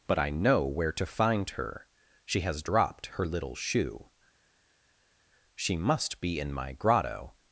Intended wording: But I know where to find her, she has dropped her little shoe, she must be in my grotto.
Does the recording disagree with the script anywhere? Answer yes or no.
no